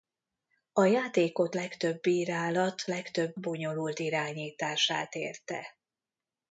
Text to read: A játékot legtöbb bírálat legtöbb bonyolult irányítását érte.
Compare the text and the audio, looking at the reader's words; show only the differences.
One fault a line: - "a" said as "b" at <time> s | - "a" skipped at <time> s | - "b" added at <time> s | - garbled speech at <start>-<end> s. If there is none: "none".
none